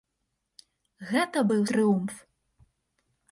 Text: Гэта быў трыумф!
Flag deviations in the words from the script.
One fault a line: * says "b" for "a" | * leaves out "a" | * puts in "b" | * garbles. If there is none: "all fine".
all fine